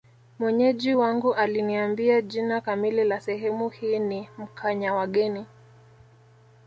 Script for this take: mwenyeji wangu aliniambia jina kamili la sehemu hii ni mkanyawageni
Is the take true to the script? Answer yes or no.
yes